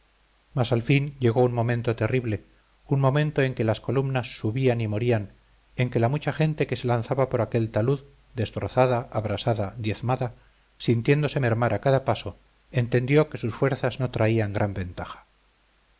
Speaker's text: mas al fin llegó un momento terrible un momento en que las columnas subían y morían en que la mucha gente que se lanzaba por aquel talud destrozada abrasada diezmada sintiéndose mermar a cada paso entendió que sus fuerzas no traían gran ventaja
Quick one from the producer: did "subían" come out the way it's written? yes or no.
yes